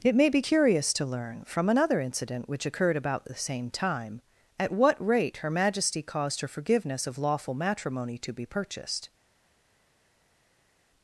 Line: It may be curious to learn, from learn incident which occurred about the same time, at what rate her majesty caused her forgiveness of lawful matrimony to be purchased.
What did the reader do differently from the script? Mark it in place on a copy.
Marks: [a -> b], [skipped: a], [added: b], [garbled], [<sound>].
It may be curious to learn, from [learn -> another] incident which occurred about the same time, at what rate her majesty caused her forgiveness of lawful matrimony to be purchased.